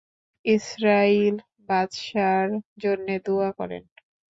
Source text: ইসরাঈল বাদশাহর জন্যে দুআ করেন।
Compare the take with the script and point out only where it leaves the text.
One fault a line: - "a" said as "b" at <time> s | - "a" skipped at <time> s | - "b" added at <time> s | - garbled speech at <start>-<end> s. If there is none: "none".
none